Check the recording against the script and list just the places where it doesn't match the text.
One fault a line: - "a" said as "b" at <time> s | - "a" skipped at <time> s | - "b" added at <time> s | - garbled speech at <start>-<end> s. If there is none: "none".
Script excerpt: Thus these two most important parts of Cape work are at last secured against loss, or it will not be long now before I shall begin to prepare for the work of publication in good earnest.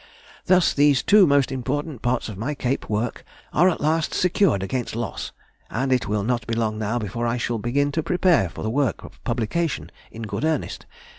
- "my" added at 2.4 s
- "or" said as "and" at 5.7 s